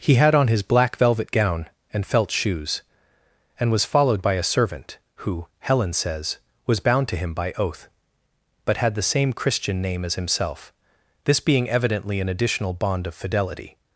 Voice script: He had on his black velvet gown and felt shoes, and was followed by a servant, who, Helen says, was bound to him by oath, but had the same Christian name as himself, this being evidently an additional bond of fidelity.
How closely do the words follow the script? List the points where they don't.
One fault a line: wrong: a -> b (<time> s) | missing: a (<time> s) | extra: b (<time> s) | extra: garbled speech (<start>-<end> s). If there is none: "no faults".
no faults